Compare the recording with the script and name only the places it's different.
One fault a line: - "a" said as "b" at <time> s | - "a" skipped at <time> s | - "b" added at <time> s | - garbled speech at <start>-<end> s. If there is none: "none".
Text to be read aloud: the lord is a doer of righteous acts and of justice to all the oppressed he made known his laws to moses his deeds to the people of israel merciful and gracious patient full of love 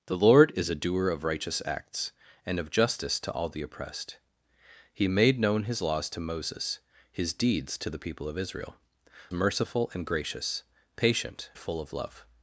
none